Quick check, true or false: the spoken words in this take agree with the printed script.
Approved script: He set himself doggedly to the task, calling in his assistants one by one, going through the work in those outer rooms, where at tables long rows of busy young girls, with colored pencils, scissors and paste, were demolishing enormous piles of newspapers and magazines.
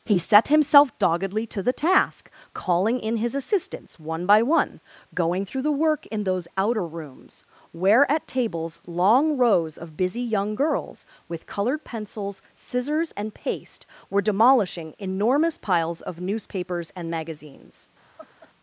true